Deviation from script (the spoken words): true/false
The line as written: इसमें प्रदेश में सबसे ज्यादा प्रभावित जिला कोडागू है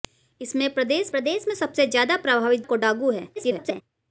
true